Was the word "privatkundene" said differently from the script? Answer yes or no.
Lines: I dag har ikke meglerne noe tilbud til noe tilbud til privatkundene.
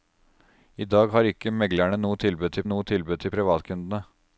no